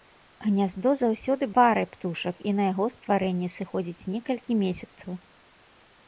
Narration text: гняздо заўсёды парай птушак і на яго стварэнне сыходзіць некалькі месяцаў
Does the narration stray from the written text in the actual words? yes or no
no